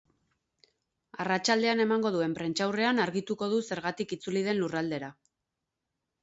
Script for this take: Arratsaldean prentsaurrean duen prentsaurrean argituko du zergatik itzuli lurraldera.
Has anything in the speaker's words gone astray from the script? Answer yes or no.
yes